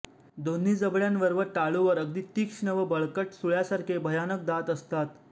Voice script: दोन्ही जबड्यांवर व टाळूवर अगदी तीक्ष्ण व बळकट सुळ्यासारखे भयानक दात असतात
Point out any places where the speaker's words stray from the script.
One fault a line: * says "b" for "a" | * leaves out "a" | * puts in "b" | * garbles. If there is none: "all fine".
all fine